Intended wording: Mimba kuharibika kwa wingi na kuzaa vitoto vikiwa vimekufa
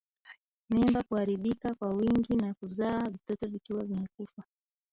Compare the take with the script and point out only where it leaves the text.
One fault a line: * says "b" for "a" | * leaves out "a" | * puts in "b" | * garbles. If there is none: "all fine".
all fine